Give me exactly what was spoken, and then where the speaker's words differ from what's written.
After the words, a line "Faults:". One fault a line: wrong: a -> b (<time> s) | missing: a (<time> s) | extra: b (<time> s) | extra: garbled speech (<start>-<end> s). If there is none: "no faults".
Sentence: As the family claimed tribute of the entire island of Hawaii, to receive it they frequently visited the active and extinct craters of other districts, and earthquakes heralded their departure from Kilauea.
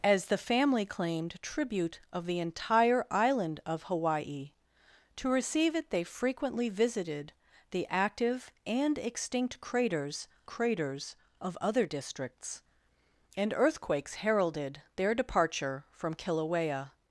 As the family claimed tribute of the entire island of Hawaii, to receive it they frequently visited the active and extinct craters craters of other districts, and earthquakes heralded their departure from Kilauea.
Faults:
extra: craters (10.5 s)